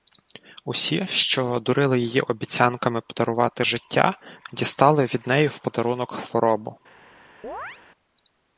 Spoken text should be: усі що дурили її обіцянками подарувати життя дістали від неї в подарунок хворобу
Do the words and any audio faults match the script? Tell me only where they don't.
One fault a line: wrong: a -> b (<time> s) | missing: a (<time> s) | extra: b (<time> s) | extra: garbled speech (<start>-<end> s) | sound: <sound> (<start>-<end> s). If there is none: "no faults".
sound: chirp (7.4-7.8 s)